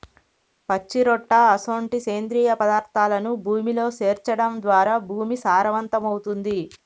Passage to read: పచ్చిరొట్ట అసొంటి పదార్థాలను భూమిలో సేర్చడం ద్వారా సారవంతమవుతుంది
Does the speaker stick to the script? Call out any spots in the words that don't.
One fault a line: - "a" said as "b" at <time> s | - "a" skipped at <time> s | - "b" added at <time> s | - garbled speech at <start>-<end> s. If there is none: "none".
- "సేంద్రియ" added at 2.0 s
- "భూమి" added at 5.1 s